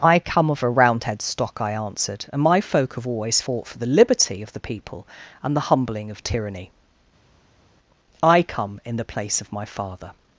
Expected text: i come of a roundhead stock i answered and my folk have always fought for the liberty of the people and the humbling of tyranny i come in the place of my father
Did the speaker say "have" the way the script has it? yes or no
yes